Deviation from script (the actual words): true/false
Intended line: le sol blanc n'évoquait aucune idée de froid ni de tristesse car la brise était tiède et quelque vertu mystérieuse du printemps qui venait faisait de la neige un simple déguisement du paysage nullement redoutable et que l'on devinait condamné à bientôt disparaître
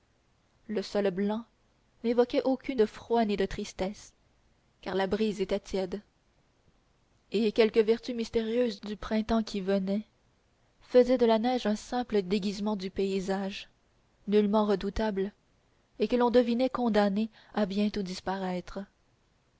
true